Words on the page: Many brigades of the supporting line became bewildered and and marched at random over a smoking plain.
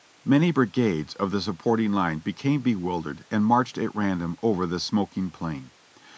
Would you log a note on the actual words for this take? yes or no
yes